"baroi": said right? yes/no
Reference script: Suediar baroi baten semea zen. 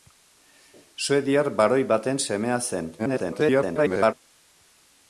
yes